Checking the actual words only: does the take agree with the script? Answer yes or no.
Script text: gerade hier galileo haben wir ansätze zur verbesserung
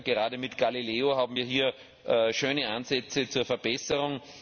no